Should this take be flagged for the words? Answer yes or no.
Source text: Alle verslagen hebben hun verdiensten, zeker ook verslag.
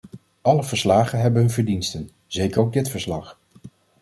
yes